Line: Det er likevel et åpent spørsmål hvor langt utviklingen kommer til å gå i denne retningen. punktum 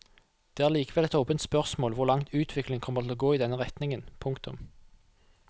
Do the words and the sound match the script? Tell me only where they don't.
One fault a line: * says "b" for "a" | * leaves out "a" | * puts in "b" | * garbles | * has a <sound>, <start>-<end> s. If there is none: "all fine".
all fine